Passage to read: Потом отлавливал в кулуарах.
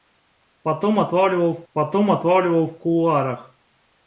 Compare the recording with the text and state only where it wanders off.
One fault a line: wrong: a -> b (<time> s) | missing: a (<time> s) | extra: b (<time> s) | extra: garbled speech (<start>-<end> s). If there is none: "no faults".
extra: потом отлавливал в (1.7 s)